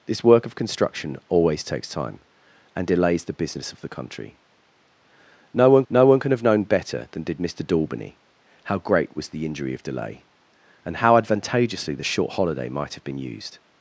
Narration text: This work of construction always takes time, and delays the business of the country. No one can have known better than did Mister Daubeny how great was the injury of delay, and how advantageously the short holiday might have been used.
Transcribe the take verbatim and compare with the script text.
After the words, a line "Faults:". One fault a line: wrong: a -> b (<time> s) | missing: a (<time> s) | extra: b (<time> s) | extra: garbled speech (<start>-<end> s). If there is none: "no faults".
This work of construction always takes time, and delays the business of the country. No one no one can have known better than did Mister Daubeny how great was the injury of delay, and how advantageously the short holiday might have been used.
Faults:
extra: no one (5.9 s)